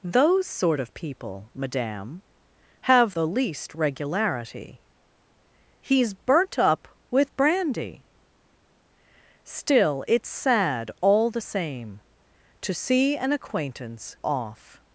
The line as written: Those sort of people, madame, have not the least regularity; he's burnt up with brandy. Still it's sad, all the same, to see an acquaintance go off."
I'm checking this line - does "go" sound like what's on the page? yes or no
no